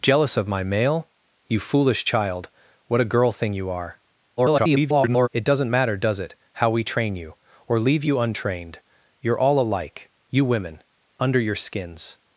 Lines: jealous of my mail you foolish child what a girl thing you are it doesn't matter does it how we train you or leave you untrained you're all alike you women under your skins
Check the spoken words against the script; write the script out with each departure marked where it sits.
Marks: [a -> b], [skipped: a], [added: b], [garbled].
jealous of my mail you foolish child what a girl thing you are [garbled] it doesn't matter does it how we train you or leave you untrained you're all alike you women under your skins